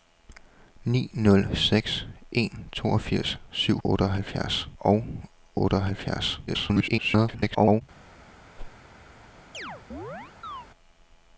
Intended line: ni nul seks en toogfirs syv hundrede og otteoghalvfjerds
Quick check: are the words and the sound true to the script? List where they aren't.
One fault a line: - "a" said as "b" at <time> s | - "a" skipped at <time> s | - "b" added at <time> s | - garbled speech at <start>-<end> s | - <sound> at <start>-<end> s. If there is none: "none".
- "hundrede" said as "otteoghalvfjerds" at 3.8 s
- garbled speech at 6.5-7.8 s
- whoosh at 8.6-8.8 s
- chirp at 9.5-10.7 s